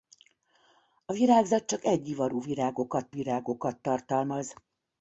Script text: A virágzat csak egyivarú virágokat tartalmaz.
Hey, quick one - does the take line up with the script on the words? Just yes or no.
no